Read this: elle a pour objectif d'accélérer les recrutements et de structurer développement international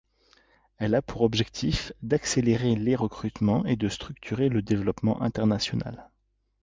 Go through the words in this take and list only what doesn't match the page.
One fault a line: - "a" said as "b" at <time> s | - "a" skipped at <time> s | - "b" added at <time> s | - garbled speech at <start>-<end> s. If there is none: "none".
- "le" added at 4.5 s